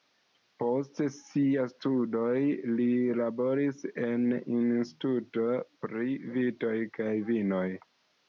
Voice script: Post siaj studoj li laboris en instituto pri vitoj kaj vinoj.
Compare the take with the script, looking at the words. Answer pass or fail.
pass